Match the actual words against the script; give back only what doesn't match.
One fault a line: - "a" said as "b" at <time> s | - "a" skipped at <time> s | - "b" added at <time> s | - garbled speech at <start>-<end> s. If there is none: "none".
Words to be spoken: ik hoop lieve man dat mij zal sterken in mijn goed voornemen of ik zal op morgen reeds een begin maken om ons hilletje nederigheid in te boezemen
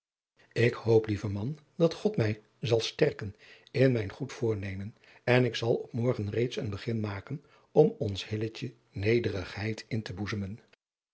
- "god" added at 1.9 s
- "of" said as "en" at 5.2 s